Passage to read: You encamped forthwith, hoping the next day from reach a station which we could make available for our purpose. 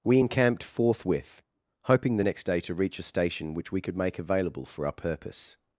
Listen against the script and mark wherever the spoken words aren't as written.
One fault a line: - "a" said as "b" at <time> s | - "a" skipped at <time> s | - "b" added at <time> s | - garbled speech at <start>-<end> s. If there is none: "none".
- "You" said as "We" at 0.0 s
- "from" said as "to" at 2.6 s